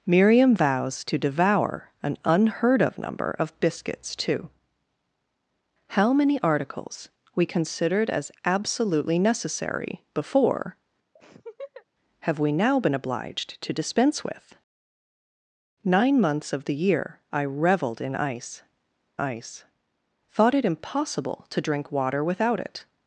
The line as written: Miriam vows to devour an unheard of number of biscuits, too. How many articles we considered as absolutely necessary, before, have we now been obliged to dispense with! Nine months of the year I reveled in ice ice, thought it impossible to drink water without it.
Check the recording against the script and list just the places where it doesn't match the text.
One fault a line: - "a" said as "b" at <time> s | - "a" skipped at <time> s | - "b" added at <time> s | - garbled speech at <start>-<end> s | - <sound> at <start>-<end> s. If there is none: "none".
- laugh at 11.2-11.9 s